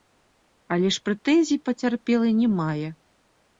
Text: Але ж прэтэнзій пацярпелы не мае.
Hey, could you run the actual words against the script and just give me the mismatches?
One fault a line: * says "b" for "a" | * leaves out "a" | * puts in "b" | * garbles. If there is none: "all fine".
all fine